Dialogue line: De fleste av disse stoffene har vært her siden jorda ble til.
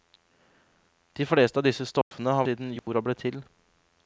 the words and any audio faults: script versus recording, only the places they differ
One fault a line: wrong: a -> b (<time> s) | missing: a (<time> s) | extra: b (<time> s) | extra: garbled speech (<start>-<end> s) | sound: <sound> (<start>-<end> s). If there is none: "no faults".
sound: dropout (2.0-2.1 s)
missing: vært her (2.5 s)
sound: dropout (2.8-2.9 s)